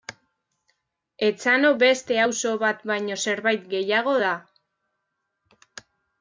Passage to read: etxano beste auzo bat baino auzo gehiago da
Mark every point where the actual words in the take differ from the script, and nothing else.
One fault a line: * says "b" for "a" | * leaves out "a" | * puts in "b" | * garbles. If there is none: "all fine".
* says "zerbait" for "auzo"